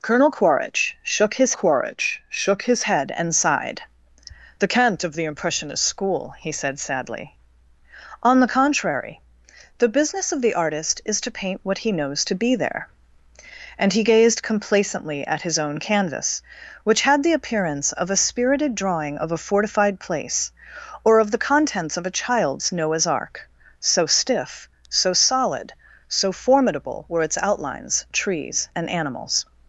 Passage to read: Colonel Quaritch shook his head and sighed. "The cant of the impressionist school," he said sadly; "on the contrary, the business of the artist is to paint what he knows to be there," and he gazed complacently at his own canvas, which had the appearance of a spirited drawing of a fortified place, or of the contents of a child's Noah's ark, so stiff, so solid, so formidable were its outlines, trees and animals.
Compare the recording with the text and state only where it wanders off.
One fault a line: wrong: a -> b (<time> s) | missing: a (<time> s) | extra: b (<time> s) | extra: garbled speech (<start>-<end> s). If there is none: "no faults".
extra: Quaritch shook his (1.5 s)